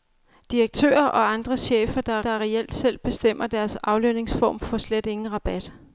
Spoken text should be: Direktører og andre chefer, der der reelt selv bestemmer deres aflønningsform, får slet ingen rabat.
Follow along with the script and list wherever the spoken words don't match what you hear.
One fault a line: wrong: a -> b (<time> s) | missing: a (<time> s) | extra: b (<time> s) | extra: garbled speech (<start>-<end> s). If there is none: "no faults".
no faults